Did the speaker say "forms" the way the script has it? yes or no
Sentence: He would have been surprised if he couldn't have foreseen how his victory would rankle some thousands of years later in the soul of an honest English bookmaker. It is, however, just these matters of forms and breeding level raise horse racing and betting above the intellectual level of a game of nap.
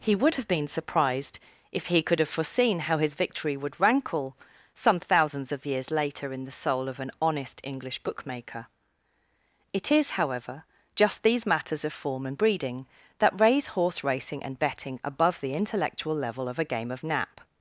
no